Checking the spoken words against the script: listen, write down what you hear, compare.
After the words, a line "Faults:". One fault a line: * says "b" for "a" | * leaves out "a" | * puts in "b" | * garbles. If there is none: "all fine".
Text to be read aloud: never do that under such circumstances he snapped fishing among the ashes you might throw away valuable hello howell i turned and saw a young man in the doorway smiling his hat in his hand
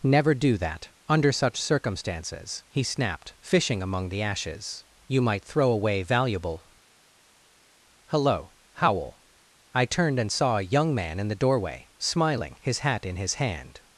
never do that under such circumstances he snapped fishing among the ashes you might throw away valuable hello howell i turned and saw a young man in the doorway smiling his hat in his hand
Faults:
all fine